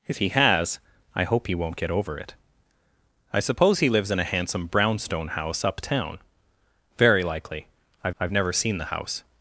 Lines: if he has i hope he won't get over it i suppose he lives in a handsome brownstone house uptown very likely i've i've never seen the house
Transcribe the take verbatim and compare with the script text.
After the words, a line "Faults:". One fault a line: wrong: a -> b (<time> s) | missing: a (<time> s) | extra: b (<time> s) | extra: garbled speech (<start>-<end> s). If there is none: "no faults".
if he has i hope he won't get over it i suppose he lives in a handsome brownstone house uptown very likely i've i've never seen the house
Faults:
no faults